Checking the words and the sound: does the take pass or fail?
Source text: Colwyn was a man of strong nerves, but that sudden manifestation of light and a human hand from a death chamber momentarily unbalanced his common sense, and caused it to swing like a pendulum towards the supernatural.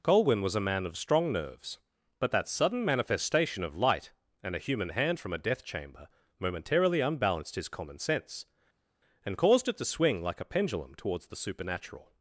pass